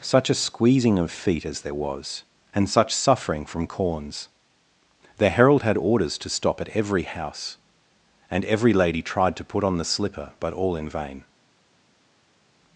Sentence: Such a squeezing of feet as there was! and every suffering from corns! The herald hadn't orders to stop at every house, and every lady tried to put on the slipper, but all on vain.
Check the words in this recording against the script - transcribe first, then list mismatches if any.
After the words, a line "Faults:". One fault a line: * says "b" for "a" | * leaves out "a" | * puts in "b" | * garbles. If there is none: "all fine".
Such a squeezing of feet as there was! and such suffering from corns! The herald had orders to stop at every house, and every lady tried to put on the slipper, but all in vain.
Faults:
* says "such" for "every"
* says "had" for "hadn't"
* says "in" for "on"